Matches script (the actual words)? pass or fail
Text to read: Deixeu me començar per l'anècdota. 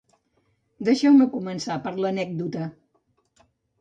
pass